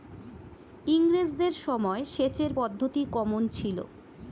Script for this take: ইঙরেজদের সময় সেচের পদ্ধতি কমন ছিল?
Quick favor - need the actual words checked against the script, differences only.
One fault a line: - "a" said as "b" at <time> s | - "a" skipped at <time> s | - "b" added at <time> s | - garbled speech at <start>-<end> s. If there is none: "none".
none